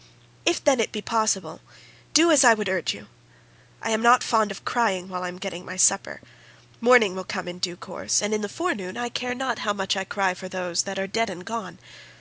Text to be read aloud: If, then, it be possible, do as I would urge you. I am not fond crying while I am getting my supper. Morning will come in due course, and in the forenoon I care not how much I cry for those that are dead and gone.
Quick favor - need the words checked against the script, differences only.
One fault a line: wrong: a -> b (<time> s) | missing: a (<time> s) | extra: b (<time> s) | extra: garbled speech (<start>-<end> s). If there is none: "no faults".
extra: of (4.5 s)